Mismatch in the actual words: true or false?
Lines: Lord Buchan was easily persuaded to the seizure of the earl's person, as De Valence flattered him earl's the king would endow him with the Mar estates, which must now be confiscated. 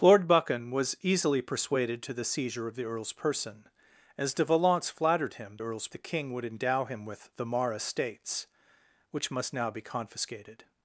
false